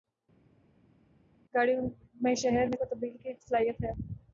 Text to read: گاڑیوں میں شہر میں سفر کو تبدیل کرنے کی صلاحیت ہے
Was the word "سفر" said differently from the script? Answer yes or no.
yes